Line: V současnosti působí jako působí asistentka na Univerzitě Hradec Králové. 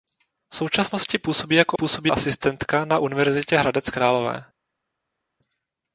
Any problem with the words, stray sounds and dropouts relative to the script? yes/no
no